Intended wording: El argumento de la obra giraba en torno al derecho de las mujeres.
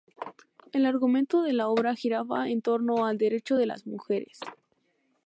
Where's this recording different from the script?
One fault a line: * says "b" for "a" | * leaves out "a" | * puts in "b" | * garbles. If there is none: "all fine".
all fine